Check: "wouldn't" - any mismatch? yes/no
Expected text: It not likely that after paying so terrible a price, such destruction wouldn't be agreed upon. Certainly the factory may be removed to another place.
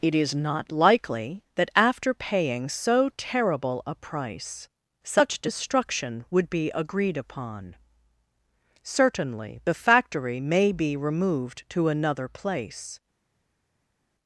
yes